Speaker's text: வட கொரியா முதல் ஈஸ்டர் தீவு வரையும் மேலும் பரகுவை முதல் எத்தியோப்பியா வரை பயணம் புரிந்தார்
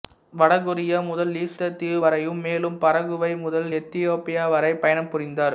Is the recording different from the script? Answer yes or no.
no